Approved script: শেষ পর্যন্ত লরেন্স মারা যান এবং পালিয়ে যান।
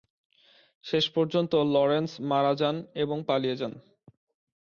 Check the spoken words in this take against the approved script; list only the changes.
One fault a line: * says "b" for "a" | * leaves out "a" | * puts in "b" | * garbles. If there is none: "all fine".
all fine